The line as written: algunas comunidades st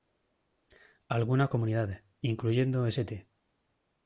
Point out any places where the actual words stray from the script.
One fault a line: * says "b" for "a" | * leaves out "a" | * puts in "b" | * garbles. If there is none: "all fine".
* puts in "incluyendo"